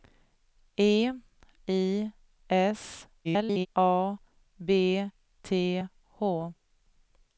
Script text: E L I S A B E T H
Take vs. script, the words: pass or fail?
fail